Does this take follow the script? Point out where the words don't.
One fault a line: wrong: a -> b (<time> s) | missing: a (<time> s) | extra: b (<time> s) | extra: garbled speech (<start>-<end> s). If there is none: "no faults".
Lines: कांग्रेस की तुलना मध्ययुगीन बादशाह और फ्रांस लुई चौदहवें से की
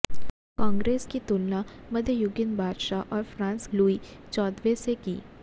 no faults